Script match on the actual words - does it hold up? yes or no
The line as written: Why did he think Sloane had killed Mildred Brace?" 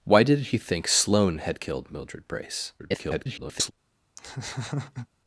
no